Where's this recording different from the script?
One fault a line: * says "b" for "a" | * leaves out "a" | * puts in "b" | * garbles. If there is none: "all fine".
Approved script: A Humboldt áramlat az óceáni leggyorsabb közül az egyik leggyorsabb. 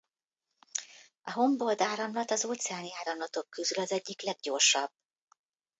* says "áramlatok" for "leggyorsabb"